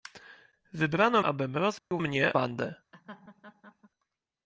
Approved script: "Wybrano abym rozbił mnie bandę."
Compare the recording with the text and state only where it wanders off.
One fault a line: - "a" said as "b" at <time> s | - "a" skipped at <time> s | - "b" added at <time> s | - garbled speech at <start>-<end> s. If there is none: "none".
none